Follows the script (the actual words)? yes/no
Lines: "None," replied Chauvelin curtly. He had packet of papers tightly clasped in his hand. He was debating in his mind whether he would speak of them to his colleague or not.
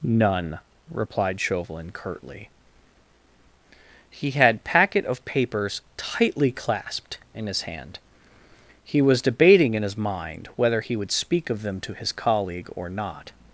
yes